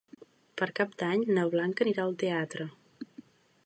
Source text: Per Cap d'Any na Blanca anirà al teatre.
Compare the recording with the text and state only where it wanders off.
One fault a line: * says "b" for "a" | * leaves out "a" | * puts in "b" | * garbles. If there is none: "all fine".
all fine